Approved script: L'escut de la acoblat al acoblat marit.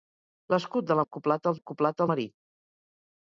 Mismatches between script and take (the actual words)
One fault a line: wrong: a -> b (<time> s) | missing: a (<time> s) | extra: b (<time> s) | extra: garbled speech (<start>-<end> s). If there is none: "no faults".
no faults